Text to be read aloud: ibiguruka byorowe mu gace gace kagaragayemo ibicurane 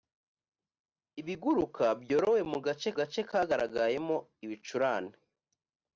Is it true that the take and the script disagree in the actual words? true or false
false